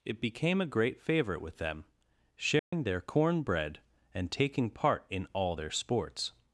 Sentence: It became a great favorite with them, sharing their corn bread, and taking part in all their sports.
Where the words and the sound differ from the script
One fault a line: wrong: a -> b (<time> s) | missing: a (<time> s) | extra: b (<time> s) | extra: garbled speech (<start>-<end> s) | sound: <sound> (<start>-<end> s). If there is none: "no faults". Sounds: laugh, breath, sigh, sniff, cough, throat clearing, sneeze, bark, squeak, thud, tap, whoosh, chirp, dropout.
sound: dropout (2.6-2.7 s)